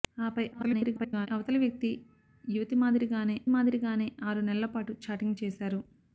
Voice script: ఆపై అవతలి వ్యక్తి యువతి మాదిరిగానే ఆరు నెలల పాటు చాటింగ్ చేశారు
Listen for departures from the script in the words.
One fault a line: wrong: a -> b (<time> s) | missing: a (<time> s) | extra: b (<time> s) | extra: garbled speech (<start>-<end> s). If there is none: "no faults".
extra: garbled speech (0.5-1.3 s)
extra: మాదిరిగానే (3.5 s)